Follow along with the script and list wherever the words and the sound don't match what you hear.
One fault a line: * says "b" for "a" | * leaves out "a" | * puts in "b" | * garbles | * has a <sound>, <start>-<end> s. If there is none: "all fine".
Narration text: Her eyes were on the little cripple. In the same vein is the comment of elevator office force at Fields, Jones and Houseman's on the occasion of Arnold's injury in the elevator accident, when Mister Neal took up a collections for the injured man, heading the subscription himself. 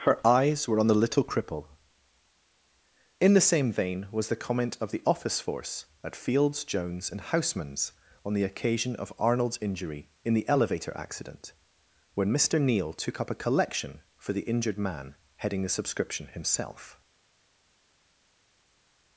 * says "was" for "is"
* says "the" for "elevator"
* says "collection" for "collections"